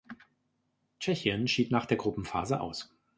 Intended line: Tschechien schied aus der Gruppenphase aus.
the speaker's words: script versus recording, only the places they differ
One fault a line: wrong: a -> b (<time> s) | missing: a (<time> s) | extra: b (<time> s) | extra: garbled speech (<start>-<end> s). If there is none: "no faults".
wrong: aus -> nach (1.7 s)